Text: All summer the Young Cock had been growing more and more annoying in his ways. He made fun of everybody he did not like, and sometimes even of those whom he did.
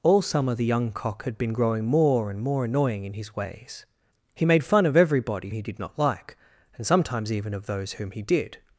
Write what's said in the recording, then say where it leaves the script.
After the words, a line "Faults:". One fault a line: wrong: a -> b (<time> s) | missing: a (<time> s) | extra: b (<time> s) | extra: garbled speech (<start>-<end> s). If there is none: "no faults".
All summer the Young Cock had been growing more and more annoying in his ways. He made fun of everybody he did not like, and sometimes even of those whom he did.
Faults:
no faults